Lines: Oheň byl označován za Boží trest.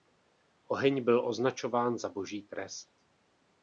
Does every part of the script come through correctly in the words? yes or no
yes